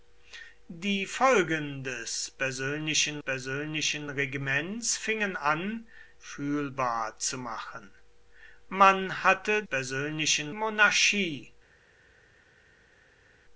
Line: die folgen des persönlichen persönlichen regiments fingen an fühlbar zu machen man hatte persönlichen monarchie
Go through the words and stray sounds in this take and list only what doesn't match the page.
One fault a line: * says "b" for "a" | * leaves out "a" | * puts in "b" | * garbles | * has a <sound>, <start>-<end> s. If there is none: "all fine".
all fine